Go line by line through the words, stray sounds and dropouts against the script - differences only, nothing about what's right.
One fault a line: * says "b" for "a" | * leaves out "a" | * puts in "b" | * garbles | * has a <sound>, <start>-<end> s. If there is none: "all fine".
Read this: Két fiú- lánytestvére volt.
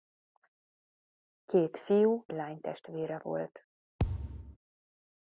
* has a thud, 4.0-4.6 s